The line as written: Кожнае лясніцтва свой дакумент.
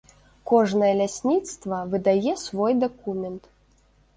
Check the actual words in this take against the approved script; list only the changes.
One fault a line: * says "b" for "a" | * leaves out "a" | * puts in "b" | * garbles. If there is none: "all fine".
* puts in "выдае"